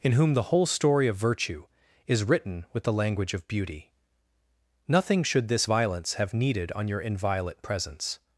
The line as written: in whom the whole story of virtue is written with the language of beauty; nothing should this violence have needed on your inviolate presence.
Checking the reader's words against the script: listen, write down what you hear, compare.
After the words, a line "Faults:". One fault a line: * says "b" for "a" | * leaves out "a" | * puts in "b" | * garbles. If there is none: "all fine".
in whom the whole story of virtue is written with the language of beauty; nothing should this violence have needed on your inviolate presence.
Faults:
all fine